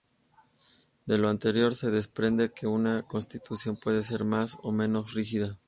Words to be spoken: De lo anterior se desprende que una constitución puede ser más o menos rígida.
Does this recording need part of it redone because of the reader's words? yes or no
no